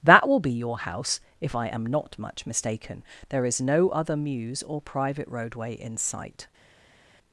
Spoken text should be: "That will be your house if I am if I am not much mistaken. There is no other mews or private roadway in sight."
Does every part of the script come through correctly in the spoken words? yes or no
no